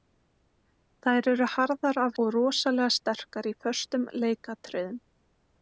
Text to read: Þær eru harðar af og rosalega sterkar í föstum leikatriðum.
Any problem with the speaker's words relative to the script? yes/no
no